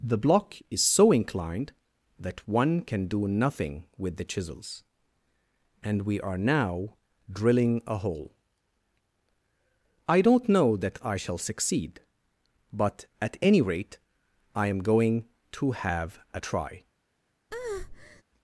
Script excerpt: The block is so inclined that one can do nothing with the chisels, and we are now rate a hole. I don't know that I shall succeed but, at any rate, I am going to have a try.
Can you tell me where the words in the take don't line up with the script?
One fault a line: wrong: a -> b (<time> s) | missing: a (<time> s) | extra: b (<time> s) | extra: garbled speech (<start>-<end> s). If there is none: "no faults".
wrong: rate -> drilling (7.3 s)